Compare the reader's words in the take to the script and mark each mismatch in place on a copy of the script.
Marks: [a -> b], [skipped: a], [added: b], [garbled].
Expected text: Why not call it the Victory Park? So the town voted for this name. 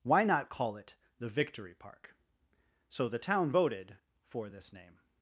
Why not call it the Victory Park? So the town voted for this name.